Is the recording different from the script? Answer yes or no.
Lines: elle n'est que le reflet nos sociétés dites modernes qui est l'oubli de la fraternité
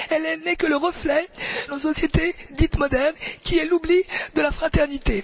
no